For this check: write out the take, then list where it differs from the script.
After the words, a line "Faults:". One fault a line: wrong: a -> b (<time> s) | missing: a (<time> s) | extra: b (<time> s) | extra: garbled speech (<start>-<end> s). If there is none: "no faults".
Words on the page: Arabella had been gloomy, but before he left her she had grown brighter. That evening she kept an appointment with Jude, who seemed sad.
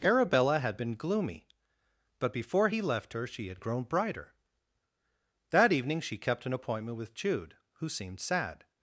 Arabella had been gloomy, but before he left her she had grown brighter. That evening she kept an appointment with Jude, who seemed sad.
Faults:
no faults